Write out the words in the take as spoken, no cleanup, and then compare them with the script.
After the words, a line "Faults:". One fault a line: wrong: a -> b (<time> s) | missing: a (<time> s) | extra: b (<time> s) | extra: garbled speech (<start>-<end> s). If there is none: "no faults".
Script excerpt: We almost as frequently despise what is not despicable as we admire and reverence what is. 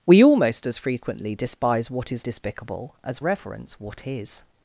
We almost as frequently despise what is despicable as reverence what is.
Faults:
missing: not (2.2 s)
missing: we admire and (3.2 s)